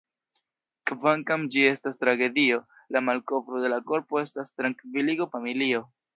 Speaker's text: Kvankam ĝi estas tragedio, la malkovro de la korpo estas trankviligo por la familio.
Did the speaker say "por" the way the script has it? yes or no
no